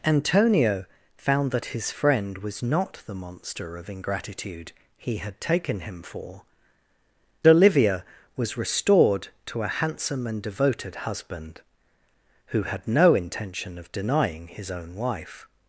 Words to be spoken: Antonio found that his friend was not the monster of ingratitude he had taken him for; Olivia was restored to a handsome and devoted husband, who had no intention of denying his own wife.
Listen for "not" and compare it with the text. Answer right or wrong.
right